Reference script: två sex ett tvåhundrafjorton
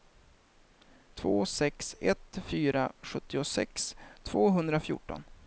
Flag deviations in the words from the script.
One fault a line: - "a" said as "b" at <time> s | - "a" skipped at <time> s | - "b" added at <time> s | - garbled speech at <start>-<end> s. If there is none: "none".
- "fyra sjuttiosex" added at 2.5 s